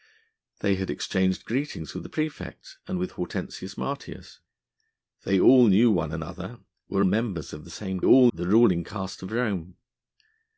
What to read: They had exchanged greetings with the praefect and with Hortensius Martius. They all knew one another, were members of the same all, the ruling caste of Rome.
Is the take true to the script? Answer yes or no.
yes